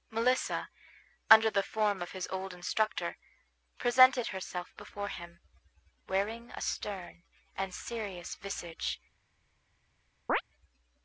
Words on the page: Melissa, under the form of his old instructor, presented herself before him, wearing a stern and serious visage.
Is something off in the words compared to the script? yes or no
no